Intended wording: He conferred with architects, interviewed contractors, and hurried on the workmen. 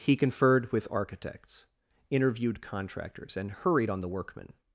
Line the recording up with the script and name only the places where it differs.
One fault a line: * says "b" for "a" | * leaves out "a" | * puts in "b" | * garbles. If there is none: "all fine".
all fine